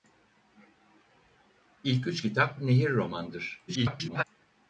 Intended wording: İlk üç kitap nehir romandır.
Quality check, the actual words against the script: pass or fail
fail